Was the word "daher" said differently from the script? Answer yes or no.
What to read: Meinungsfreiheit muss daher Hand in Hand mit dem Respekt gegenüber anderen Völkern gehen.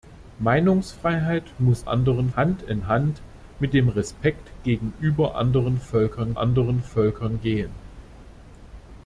yes